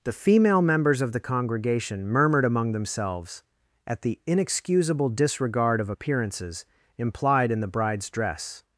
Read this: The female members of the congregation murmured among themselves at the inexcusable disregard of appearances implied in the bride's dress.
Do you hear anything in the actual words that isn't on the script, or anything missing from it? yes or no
no